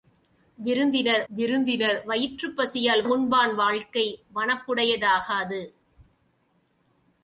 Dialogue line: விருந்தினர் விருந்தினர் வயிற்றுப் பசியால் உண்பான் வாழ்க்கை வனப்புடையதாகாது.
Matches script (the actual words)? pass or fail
pass